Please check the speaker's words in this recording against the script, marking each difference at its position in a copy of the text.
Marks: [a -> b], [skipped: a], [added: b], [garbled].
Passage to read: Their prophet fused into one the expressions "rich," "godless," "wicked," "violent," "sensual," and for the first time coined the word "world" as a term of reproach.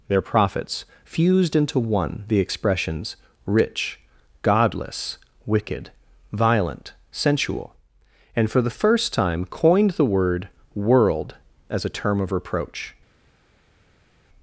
Their [prophet -> prophets] fused into one the expressions "rich," "godless," "wicked," "violent," "sensual," and for the first time coined the word "world" as a term of reproach.